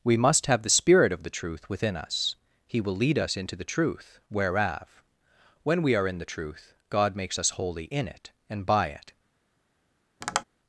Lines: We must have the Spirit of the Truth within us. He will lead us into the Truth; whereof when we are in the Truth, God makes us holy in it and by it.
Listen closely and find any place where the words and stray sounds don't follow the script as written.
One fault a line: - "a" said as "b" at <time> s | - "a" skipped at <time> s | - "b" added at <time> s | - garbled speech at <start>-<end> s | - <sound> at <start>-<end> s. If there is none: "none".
- tap at 10.2-10.4 s